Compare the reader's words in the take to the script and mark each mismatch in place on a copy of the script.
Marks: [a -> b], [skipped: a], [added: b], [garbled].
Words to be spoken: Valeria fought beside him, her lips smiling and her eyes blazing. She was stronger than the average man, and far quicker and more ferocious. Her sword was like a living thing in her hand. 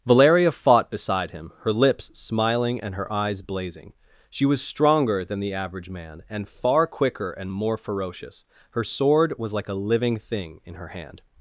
Valeria fought beside him, her lips smiling and her eyes blazing. She was stronger than the average man, and far quicker and more ferocious. Her sword was like a living thing in her hand.